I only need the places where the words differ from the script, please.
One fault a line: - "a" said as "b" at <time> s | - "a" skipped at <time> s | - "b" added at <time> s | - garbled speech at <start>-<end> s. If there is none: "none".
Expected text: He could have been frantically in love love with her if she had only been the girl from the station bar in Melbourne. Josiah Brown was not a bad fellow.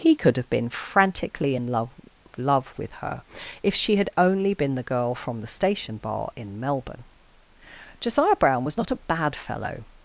none